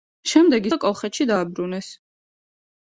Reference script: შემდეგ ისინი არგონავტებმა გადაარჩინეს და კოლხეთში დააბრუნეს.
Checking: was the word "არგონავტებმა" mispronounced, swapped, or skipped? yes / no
yes